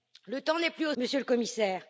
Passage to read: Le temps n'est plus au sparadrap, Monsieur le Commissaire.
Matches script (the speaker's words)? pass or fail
fail